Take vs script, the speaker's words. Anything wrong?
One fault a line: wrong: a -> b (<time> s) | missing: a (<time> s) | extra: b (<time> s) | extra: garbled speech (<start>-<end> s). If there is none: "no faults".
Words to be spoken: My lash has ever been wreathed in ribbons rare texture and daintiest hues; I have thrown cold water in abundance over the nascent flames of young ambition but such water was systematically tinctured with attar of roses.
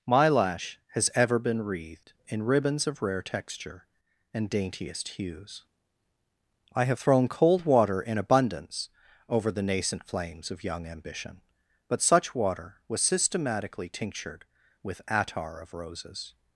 extra: of (2.9 s)